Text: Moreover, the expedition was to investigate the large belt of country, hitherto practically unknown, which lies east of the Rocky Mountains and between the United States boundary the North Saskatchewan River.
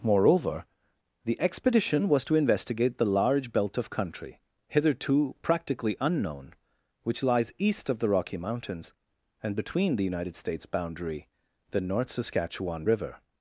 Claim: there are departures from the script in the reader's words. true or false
false